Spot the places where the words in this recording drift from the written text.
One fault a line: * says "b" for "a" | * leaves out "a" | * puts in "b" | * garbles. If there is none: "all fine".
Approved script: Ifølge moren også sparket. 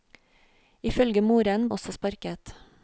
all fine